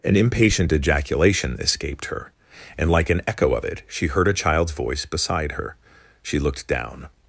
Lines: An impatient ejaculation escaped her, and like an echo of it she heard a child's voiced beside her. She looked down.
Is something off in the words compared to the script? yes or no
yes